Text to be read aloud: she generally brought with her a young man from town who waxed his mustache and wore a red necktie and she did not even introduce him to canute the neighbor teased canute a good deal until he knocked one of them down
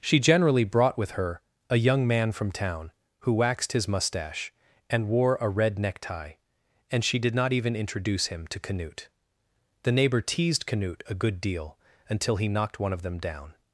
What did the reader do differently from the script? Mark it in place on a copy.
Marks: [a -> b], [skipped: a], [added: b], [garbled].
she generally brought with her a young man from town who waxed his mustache and wore a red necktie and she did not even introduce him to canute the neighbor teased canute a good deal until he knocked one of them down